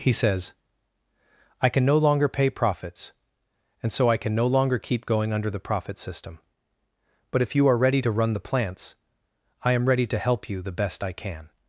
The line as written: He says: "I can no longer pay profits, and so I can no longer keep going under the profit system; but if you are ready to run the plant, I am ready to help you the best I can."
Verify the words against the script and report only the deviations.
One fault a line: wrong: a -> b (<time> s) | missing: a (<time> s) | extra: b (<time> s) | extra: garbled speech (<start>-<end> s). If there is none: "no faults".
wrong: plant -> plants (8.4 s)